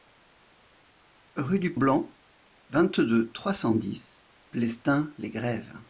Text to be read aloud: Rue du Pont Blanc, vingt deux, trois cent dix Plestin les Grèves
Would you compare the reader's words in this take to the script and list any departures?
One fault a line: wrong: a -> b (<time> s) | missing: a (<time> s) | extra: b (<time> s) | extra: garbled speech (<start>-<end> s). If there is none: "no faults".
missing: Pont (1.8 s)